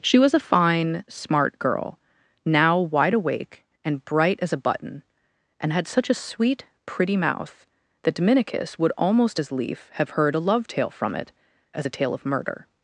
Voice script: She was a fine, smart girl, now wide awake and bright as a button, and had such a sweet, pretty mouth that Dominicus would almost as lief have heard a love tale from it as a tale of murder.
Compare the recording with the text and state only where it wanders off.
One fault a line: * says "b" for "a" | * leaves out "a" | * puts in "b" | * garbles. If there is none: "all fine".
all fine